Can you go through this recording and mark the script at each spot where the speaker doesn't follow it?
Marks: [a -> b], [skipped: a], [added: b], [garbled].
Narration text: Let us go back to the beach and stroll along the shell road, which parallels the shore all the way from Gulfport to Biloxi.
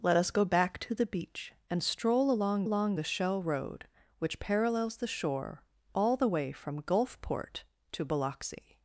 Let us go back to the beach and stroll along [added: along] the shell road, which parallels the shore all the way from Gulfport to Biloxi.